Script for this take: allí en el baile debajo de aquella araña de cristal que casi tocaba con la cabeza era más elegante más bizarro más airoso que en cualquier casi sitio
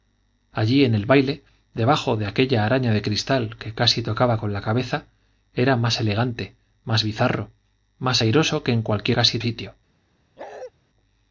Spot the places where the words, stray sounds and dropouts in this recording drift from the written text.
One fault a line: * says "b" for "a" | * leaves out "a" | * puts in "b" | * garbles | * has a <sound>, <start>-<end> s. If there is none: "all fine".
* has a bark, 10.4-10.7 s